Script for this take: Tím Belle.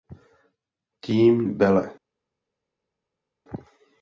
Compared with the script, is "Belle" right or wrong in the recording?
right